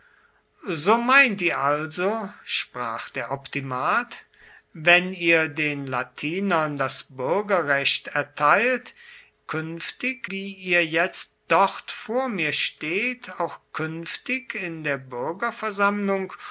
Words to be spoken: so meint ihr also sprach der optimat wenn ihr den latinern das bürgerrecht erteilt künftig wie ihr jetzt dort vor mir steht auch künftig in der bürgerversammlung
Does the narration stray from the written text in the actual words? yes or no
no